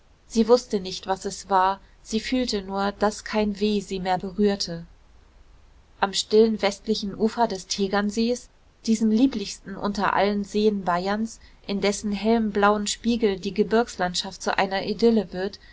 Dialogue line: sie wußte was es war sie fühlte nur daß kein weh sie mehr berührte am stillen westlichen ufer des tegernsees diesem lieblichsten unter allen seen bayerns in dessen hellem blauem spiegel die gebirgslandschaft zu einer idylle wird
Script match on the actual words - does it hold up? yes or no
no